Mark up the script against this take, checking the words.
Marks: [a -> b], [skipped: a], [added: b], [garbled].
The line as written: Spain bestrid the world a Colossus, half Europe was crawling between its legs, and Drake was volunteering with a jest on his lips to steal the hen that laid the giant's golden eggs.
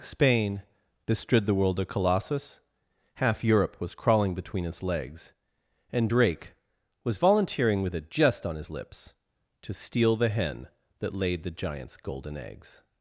Spain bestrid the world a Colossus, half Europe was crawling between its legs, and Drake was volunteering with a jest on his lips to steal the hen that laid the giant's golden eggs.